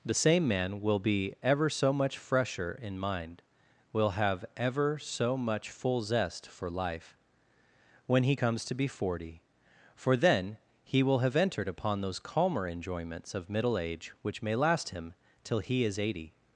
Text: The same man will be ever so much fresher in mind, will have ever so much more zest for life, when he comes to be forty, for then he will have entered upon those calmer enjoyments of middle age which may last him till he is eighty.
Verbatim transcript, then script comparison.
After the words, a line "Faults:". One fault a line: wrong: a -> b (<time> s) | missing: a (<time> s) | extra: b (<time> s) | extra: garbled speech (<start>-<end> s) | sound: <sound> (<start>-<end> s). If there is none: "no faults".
The same man will be ever so much fresher in mind, will have ever so much full zest for life, when he comes to be forty, for then he will have entered upon those calmer enjoyments of middle age which may last him till he is eighty.
Faults:
wrong: more -> full (5.7 s)